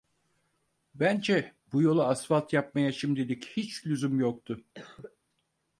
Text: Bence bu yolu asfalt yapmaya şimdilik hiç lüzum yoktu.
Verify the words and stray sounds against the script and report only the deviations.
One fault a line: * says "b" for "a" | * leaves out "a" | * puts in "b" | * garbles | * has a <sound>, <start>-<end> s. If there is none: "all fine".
* has a cough, 4.7-5.2 s